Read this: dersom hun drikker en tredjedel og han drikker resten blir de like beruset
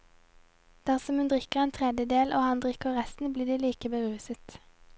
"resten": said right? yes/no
yes